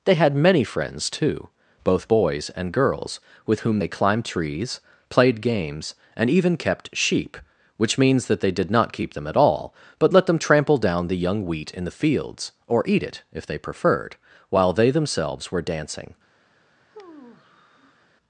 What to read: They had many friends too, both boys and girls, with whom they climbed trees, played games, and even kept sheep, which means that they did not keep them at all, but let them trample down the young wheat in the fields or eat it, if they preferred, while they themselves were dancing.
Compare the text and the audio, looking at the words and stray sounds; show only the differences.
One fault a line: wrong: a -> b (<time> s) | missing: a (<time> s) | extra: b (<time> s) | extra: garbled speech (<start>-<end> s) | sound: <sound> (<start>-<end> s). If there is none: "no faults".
sound: sigh (16.9-18.1 s)